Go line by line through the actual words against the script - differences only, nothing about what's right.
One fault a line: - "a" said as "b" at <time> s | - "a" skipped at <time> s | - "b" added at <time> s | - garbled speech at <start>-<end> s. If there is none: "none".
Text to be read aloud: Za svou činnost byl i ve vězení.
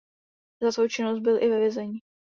none